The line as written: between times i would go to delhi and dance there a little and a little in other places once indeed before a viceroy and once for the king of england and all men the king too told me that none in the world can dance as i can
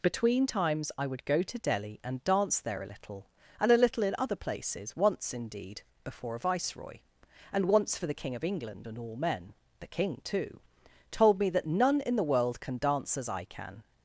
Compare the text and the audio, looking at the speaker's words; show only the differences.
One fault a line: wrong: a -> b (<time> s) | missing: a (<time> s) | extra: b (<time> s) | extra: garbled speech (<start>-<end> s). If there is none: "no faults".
no faults